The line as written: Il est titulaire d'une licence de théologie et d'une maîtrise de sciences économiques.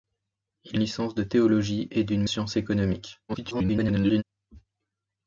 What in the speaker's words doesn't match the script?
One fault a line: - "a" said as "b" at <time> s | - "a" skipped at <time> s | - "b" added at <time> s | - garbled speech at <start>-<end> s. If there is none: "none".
- "est titulaire d'une" skipped at 0.8 s
- "maîtrise de" skipped at 2.2 s
- garbled speech at 3.3-4.2 s